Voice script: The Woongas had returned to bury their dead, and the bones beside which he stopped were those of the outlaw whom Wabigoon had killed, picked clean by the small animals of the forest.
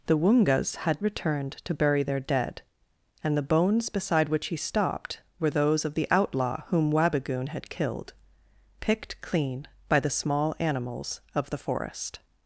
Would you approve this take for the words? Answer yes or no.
yes